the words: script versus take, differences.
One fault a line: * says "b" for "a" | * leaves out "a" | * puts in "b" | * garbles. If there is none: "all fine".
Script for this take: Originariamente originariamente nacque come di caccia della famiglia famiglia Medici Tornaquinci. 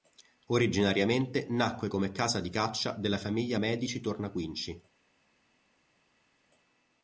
* leaves out "originariamente"
* puts in "casa"
* leaves out "famiglia"